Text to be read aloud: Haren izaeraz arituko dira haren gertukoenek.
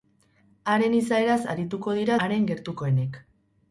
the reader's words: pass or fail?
pass